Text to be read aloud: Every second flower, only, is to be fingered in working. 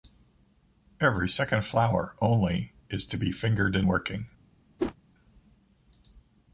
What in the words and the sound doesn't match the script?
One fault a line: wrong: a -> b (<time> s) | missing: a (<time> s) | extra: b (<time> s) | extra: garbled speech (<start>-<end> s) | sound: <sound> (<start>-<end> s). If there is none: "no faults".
sound: whoosh (4.8-4.9 s)